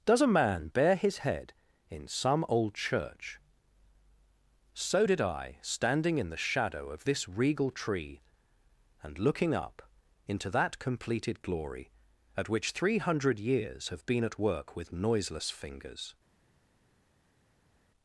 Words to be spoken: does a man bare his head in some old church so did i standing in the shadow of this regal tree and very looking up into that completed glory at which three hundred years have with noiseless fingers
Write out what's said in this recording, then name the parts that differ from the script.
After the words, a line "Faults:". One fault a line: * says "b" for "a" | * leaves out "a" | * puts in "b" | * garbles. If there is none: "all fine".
does a man bare his head in some old church so did i standing in the shadow of this regal tree and looking up into that completed glory at which three hundred years have been at work with noiseless fingers
Faults:
* leaves out "very"
* puts in "been at work"